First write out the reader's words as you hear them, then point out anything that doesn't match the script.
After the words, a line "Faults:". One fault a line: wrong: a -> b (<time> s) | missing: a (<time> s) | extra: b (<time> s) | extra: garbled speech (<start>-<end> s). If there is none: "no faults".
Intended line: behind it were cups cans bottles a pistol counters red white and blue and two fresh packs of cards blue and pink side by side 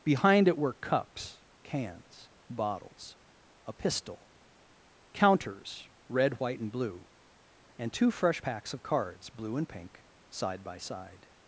behind it were cups cans bottles a pistol counters red white and blue and two fresh packs of cards blue and pink side by side
Faults:
no faults